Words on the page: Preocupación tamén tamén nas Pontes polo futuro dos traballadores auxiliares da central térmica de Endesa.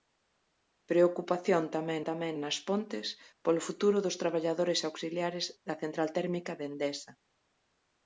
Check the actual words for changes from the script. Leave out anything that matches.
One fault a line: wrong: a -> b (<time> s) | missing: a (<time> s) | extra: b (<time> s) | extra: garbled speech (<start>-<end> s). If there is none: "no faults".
no faults